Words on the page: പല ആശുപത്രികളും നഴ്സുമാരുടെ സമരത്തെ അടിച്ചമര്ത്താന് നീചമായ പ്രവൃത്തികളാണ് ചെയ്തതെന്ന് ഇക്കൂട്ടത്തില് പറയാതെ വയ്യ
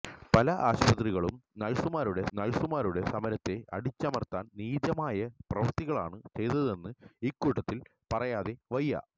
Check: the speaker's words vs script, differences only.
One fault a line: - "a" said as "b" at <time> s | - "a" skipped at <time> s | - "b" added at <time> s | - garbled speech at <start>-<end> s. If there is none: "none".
- "നഴ്സുമാരുടെ" added at 2.4 s